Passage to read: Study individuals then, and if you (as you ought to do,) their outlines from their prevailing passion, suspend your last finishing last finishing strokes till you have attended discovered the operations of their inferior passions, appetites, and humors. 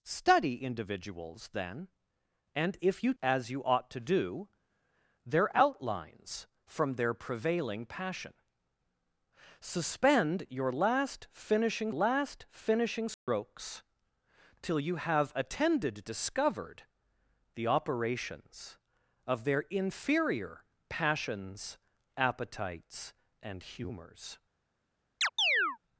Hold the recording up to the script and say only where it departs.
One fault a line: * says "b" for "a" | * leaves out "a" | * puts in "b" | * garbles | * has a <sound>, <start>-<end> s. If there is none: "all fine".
* has a dropout, 13.1-13.3 s
* has a chirp, 25.2-25.8 s